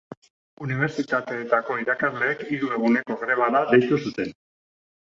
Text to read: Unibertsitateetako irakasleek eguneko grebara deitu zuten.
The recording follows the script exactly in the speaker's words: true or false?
false